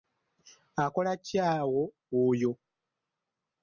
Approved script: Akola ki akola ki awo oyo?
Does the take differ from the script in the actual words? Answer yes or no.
yes